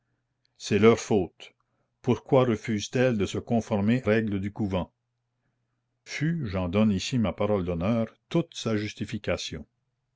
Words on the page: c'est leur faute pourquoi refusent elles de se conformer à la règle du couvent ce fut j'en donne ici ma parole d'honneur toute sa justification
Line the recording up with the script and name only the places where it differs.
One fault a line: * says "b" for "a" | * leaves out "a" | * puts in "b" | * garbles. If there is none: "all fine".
* leaves out "à la"
* leaves out "ce"